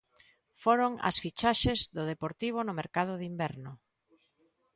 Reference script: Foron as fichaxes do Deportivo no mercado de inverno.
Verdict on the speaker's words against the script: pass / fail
pass